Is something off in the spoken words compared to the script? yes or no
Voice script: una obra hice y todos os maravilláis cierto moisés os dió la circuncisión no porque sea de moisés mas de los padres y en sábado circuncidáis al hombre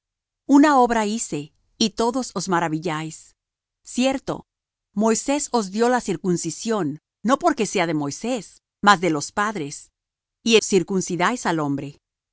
yes